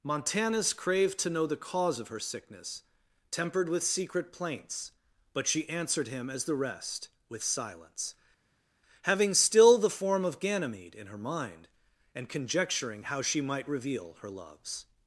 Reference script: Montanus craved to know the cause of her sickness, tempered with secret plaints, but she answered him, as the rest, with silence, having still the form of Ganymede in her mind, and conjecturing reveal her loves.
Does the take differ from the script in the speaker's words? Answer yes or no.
yes